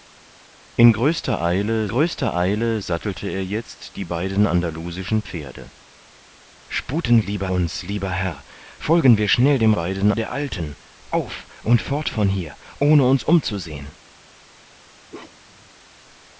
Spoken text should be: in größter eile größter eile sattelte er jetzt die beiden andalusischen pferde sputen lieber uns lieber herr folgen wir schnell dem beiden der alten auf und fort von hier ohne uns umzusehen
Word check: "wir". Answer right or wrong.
right